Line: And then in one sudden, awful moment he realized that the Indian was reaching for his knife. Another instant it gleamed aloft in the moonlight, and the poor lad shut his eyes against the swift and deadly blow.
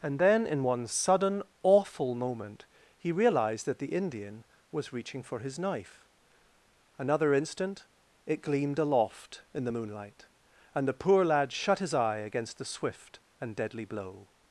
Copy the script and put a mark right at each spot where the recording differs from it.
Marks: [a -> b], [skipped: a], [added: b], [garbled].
And then in one sudden, awful moment he realized that the Indian was reaching for his knife. Another instant it gleamed aloft in the moonlight, and the poor lad shut his [eyes -> eye] against the swift and deadly blow.